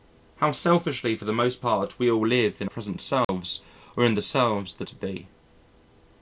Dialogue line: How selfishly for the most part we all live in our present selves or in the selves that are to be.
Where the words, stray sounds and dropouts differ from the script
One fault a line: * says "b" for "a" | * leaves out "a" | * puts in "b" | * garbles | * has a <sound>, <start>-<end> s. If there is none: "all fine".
* leaves out "our"
* has a dropout, 3.2-3.3 s
* leaves out "are"